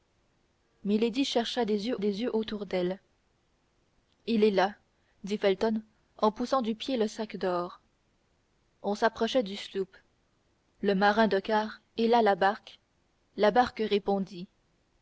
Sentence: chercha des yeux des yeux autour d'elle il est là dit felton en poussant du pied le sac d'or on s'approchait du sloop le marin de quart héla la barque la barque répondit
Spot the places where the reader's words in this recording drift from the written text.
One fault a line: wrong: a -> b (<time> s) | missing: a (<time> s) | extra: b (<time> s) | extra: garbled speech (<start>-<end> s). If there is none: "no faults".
no faults